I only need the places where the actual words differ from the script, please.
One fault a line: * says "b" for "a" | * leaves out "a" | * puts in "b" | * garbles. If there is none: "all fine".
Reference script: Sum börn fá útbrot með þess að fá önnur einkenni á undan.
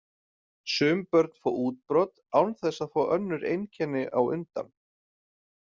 * says "án" for "með"